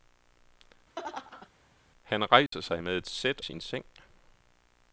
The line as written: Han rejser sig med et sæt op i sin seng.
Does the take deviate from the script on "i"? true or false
true